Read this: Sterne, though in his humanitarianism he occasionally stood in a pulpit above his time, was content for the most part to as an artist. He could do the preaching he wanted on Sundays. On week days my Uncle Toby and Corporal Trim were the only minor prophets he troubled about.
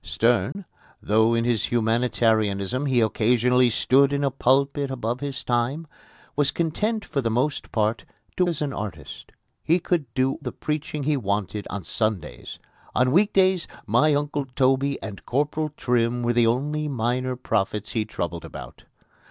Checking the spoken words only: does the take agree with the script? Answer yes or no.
yes